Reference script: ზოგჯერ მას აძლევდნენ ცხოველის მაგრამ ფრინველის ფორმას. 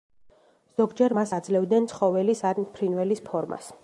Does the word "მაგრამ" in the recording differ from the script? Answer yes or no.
yes